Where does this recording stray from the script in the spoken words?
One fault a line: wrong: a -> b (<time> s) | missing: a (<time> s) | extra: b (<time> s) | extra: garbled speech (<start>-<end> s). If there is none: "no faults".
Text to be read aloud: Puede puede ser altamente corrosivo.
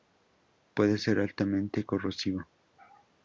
missing: puede (1.0 s)